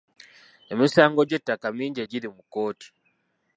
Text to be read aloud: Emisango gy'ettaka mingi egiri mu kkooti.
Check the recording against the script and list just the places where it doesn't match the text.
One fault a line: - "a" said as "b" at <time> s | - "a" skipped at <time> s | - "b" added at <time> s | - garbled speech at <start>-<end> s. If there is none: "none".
none